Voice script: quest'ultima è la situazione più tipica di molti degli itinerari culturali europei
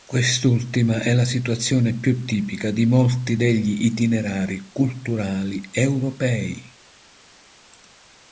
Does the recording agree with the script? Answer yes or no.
yes